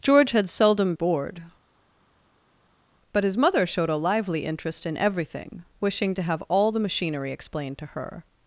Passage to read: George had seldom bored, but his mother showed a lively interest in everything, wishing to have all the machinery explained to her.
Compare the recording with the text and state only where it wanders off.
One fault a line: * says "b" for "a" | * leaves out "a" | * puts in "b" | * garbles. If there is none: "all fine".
all fine